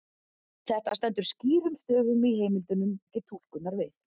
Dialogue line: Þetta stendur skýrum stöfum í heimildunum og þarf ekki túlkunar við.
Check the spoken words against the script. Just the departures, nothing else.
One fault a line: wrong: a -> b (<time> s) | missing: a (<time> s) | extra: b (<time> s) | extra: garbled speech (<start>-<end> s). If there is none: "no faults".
missing: og þarf (2.9 s)